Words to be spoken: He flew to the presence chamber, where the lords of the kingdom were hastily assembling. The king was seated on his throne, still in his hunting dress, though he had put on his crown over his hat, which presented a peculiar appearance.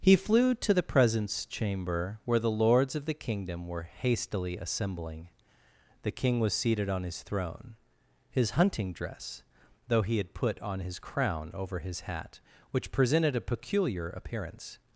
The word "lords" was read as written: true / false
true